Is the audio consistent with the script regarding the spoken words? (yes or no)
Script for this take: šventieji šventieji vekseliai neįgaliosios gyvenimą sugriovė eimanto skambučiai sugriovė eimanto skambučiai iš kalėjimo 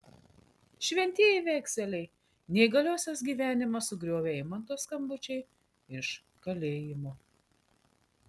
no